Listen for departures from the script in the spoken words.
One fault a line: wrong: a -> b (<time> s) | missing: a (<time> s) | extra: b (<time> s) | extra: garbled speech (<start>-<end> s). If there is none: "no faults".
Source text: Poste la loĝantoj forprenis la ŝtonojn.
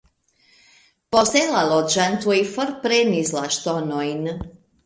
no faults